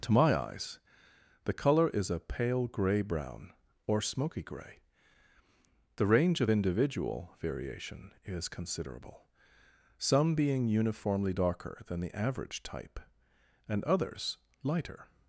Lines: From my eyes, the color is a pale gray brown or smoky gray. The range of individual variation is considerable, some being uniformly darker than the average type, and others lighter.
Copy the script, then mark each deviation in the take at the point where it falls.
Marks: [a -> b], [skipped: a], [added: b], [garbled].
[From -> To] my eyes, the color is a pale gray brown or smoky gray. The range of individual variation is considerable, some being uniformly darker than the average type, and others lighter.